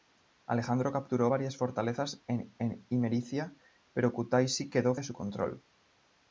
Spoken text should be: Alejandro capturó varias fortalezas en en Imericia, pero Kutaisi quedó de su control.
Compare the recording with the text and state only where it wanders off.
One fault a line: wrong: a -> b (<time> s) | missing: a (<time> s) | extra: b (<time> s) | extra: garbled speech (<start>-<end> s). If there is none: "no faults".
no faults